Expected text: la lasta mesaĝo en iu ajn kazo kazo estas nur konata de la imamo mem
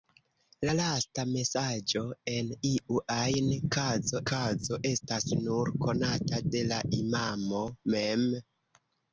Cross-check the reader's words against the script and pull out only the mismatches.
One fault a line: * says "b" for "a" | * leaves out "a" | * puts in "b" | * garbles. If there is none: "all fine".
all fine